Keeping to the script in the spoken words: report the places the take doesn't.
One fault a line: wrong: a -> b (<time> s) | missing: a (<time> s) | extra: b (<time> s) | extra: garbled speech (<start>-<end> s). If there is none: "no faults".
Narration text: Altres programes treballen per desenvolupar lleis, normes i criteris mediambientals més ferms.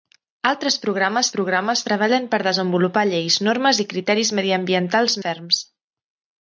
extra: programes (1.4 s)
missing: més (5.2 s)